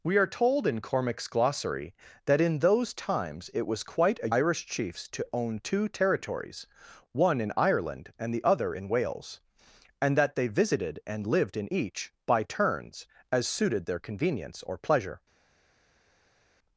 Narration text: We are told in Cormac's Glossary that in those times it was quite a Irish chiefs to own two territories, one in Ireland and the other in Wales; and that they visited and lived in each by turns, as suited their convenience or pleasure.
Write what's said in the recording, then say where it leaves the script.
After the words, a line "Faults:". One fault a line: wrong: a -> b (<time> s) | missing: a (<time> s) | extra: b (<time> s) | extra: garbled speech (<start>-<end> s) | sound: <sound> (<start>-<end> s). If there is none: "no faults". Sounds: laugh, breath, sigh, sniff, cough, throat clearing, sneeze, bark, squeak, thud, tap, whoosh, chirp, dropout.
We are told in Cormac's Glossary that in those times it was quite a Irish chiefs to own two territories, one in Ireland and the other in Wales; and that they visited and lived in each by turns, as suited their convenience or pleasure.
Faults:
no faults